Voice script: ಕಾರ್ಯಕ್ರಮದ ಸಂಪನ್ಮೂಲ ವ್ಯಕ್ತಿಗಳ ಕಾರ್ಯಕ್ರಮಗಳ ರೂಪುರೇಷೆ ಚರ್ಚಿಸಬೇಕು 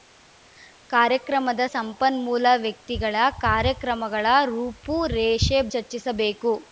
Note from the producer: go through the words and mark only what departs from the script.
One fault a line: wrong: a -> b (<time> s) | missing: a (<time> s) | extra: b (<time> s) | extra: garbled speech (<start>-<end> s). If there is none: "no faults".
no faults